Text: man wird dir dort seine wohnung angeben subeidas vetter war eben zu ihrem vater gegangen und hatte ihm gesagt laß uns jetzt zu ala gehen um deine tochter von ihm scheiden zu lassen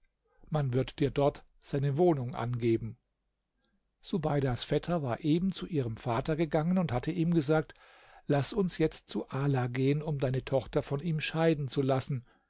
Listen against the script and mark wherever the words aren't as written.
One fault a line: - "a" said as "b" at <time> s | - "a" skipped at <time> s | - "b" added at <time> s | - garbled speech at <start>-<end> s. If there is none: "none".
none